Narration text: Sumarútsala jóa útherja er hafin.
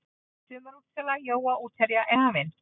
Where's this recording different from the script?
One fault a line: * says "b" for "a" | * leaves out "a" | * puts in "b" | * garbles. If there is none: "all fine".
all fine